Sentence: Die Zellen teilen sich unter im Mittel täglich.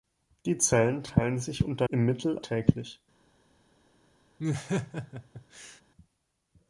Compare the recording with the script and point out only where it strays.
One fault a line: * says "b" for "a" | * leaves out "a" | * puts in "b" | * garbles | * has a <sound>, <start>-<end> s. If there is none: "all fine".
* has a laugh, 4.4-5.8 s